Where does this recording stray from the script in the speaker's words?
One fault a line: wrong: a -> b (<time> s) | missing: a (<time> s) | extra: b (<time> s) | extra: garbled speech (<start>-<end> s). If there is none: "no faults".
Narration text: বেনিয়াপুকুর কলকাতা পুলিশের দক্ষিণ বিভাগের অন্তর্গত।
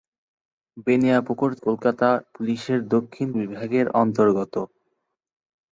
no faults